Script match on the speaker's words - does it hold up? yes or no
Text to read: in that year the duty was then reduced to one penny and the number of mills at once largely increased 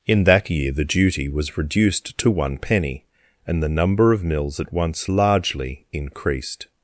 no